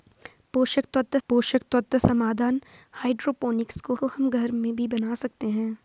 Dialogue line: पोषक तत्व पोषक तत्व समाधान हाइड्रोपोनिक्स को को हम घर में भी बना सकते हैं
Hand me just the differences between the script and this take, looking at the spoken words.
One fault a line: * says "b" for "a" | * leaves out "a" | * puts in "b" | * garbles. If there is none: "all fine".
all fine